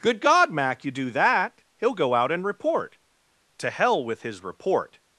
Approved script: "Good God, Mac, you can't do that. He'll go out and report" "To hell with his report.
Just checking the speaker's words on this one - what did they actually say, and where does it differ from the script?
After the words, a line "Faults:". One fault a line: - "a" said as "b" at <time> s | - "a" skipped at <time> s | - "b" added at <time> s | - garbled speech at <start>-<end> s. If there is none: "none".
"Good God, Mac, you do that. He'll go out and report" "To hell with his report.
Faults:
- "can't" skipped at 0.9 s